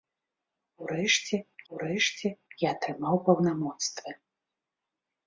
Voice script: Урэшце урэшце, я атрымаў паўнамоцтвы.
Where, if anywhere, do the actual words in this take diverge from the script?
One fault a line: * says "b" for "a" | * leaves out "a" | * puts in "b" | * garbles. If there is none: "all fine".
all fine